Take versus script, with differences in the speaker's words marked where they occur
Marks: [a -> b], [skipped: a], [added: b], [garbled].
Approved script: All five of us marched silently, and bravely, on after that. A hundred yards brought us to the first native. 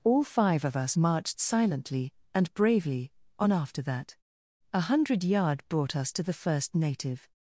All five of us marched silently, and bravely, on after that. A hundred [yards -> yard] brought us to the first native.